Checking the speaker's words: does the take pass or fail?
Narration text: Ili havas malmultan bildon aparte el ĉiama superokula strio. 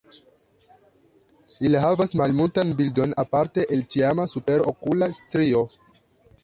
pass